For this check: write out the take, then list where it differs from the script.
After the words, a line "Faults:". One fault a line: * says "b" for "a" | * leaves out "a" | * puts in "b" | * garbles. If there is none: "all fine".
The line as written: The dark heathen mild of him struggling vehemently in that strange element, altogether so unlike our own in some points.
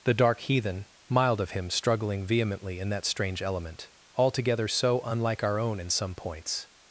The dark heathen mild of him struggling vehemently in that strange element, altogether so unlike our own in some points.
Faults:
all fine